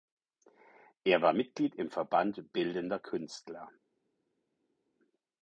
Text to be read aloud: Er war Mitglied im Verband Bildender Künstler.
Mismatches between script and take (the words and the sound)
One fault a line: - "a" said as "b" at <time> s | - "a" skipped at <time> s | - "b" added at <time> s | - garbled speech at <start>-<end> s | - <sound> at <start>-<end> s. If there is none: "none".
none